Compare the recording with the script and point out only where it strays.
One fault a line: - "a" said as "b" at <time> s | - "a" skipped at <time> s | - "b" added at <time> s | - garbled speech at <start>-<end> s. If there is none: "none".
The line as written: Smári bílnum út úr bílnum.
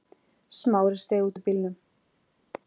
- "bílnum" said as "steig" at 1.0 s